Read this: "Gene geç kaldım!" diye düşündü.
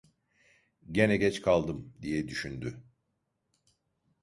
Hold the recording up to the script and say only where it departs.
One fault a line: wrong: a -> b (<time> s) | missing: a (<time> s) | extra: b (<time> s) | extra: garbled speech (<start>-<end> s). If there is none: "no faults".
no faults